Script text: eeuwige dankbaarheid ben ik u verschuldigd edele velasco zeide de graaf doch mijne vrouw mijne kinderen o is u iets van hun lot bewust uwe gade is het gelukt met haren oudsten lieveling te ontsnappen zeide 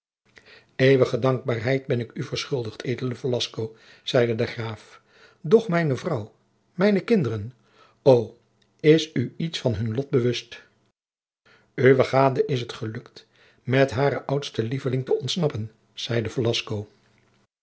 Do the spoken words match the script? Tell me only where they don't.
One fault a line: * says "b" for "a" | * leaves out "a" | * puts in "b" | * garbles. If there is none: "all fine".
all fine